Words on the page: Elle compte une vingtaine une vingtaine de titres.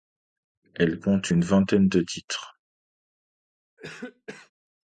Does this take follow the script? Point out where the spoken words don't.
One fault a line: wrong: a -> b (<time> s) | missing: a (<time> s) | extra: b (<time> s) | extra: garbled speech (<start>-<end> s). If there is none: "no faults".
missing: une vingtaine (1.9 s)